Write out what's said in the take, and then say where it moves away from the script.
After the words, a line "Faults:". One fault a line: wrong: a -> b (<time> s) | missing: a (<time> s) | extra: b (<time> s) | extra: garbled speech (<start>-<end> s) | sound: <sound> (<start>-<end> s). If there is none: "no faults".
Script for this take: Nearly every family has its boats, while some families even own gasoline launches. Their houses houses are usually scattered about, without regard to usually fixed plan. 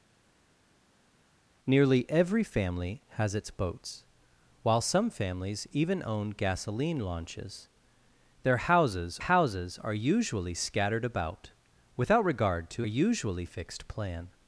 Nearly every family has its boats, while some families even own gasoline launches. Their houses houses are usually scattered about, without regard to usually fixed plan.
Faults:
no faults